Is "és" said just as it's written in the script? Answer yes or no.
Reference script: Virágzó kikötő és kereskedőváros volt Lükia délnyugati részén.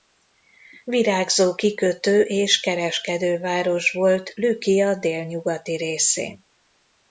yes